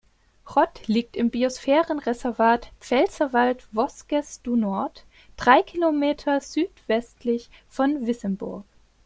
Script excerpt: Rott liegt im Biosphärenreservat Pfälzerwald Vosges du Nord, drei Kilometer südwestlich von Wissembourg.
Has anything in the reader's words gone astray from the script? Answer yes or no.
no